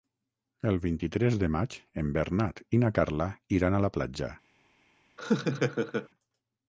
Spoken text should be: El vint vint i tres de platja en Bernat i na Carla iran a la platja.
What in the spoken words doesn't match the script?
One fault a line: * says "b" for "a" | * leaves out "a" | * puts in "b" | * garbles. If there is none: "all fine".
* leaves out "vint"
* says "maig" for "platja"